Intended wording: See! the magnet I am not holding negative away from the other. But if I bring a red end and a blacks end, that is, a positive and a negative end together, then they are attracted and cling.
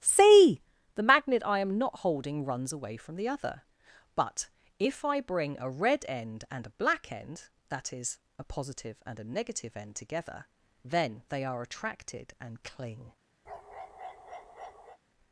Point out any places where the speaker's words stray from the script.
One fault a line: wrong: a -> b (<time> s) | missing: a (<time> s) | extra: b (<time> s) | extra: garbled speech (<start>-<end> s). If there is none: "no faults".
wrong: negative -> runs (2.4 s)
wrong: blacks -> black (6.7 s)